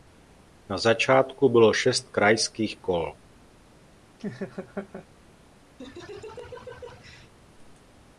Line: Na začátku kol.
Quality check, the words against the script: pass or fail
fail